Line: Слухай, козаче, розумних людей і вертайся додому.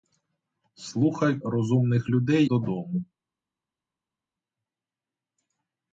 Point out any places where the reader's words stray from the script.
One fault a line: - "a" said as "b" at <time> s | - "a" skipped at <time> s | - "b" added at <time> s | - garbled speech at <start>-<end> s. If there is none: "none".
- "козаче" skipped at 1.4 s
- "і вертайся" skipped at 2.4 s